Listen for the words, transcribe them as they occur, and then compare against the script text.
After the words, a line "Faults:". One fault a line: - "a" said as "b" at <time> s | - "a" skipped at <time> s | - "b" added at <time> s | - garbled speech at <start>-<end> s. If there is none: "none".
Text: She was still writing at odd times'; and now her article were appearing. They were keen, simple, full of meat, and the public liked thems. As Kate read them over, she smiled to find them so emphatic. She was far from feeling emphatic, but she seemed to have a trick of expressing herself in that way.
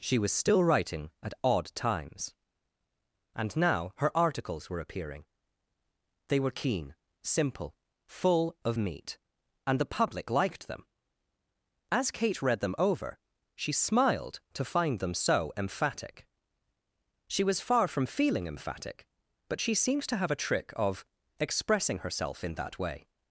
She was still writing at odd times'; and now her articles were appearing. They were keen, simple, full of meat, and the public liked them. As Kate read them over, she smiled to find them so emphatic. She was far from feeling emphatic, but she seemed to have a trick of expressing herself in that way.
Faults:
- "article" said as "articles" at 4.2 s
- "thems" said as "them" at 10.7 s